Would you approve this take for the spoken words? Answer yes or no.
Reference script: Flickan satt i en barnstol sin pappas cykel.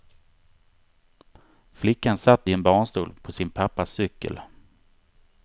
no